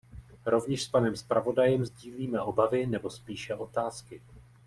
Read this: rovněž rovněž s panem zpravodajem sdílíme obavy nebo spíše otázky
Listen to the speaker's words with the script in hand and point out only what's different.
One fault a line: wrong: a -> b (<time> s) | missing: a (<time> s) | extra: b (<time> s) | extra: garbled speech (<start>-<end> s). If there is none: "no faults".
missing: rovněž (0.8 s)